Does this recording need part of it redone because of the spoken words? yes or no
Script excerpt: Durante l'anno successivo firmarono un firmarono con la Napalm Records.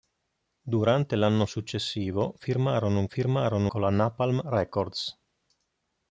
no